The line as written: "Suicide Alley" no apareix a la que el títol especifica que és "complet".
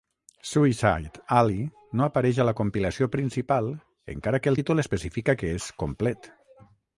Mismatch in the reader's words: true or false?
true